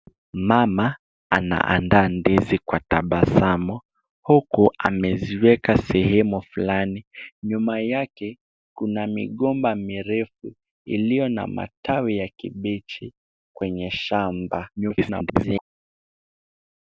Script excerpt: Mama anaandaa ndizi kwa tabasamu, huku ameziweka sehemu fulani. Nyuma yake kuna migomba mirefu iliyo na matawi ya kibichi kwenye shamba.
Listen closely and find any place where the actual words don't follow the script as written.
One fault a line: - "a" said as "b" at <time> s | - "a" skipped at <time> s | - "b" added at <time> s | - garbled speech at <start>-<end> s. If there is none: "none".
- garbled speech at 14.8-15.6 s